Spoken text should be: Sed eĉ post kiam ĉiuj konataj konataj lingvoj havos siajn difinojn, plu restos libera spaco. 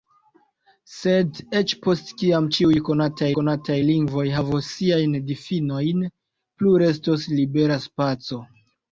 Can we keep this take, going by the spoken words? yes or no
yes